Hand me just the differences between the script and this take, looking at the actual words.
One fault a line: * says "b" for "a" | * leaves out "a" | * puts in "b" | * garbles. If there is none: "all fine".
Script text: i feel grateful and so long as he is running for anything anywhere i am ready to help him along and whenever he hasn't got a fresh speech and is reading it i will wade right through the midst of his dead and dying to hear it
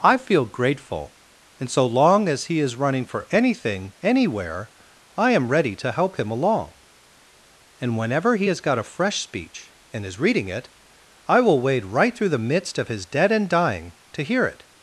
* says "has" for "hasn't"